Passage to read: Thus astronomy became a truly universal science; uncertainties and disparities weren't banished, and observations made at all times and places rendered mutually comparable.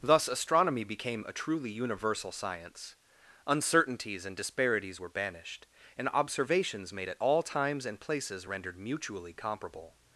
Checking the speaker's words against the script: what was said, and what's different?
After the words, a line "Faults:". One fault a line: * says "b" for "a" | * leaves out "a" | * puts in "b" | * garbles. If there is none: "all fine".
Thus astronomy became a truly universal science; uncertainties and disparities were banished, and observations made at all times and places rendered mutually comparable.
Faults:
* says "were" for "weren't"